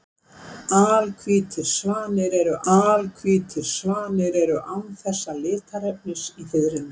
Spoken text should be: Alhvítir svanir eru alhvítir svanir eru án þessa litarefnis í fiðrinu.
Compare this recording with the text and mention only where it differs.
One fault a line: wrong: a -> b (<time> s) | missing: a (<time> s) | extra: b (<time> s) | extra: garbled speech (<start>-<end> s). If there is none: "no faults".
no faults